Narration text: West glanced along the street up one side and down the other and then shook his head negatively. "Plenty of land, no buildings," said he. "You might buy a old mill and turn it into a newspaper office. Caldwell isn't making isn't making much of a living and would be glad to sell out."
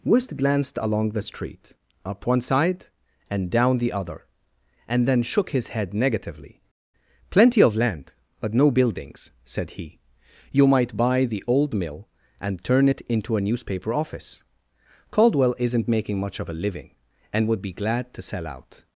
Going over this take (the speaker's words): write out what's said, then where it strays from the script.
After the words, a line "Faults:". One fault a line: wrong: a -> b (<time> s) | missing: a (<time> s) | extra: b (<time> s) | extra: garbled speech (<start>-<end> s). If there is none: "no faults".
West glanced along the street up one side and down the other and then shook his head negatively. "Plenty of land, but no buildings," said he. "You might buy the old mill and turn it into a newspaper office. Caldwell isn't making much of a living and would be glad to sell out."
Faults:
extra: but (8.4 s)
wrong: a -> the (11.2 s)
missing: isn't making (16.2 s)